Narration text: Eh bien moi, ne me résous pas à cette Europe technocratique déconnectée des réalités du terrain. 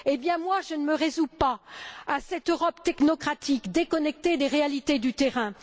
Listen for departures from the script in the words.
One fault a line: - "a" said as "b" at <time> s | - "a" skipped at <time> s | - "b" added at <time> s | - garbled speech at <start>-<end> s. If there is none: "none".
- "je" added at 0.6 s